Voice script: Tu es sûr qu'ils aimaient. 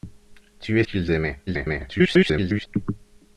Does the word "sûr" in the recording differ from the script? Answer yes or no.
yes